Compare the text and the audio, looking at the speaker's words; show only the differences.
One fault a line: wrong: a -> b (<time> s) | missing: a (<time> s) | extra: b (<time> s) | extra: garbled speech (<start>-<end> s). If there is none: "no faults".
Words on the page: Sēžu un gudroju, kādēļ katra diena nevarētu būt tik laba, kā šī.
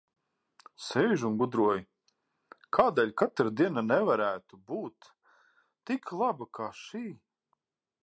no faults